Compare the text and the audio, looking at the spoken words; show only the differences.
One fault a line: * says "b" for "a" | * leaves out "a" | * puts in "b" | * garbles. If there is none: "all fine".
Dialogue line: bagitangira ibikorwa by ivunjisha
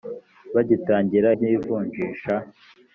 * leaves out "ibikorwa"